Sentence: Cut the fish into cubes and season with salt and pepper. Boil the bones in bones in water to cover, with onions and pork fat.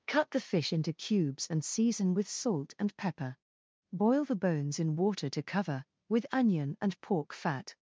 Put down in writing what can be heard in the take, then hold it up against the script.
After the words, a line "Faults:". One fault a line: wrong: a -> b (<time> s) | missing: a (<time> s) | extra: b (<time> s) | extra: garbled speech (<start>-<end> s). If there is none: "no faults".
Cut the fish into cubes and season with salt and pepper. Boil the bones in water to cover, with onion and pork fat.
Faults:
missing: bones in (5.0 s)
wrong: onions -> onion (6.3 s)